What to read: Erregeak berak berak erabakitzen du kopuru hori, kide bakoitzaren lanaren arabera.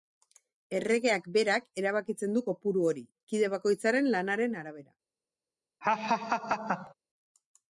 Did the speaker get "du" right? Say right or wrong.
right